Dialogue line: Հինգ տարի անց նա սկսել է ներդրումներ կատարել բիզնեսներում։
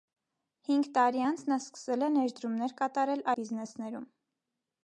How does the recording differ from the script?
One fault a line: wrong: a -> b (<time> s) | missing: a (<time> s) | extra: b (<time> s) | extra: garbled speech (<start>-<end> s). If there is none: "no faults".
no faults